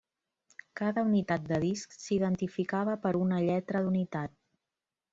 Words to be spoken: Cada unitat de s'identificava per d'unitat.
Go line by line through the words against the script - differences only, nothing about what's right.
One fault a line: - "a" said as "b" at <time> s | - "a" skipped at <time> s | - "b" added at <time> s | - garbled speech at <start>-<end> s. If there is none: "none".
- "disc" added at 1.6 s
- "una lletra" added at 3.2 s